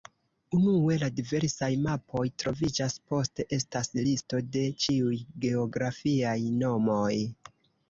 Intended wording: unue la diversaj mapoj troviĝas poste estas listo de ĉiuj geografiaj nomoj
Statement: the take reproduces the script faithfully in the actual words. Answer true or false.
true